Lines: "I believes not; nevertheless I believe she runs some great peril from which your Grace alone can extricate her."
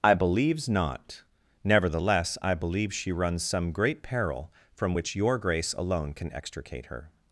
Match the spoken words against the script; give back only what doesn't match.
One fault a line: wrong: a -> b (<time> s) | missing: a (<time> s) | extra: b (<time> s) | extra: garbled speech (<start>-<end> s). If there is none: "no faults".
no faults